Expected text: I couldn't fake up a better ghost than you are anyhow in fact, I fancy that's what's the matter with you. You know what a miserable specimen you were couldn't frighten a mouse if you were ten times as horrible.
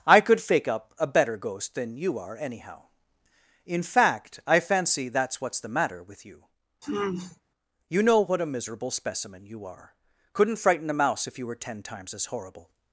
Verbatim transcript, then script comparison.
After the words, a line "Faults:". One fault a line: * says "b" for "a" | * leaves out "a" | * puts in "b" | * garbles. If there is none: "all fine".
I could fake up a better ghost than you are anyhow in fact, I fancy that's what's the matter with you. You know what a miserable specimen you are couldn't frighten a mouse if you were ten times as horrible.
Faults:
* says "could" for "couldn't"
* says "are" for "were"